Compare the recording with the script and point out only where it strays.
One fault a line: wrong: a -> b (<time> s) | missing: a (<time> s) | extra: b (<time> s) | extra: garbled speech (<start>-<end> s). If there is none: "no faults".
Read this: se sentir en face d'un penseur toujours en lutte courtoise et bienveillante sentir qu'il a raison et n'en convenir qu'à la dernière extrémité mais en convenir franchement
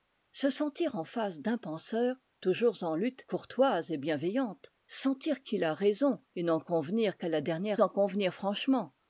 missing: extrémité mais (7.8 s)